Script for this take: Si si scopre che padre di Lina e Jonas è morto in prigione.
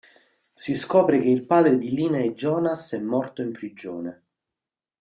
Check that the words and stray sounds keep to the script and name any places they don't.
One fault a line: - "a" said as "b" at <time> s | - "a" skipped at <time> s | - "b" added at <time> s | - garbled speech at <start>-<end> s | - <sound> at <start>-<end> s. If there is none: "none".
- "si" skipped at 0.7 s
- "il" added at 1.3 s